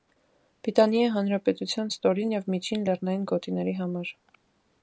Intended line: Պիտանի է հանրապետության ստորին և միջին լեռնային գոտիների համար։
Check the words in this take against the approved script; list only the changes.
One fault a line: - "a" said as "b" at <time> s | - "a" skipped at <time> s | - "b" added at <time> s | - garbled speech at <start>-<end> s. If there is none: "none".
none